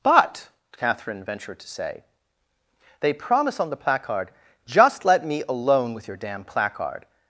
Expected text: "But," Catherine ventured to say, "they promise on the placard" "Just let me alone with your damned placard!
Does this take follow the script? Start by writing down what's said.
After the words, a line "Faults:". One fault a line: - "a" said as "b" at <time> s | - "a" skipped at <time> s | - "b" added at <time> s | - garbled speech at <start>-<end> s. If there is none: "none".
"But," Catherine ventured to say, "they promise on the placard" "Just let me alone with your damn placard!
Faults:
- "damned" said as "damn" at 6.2 s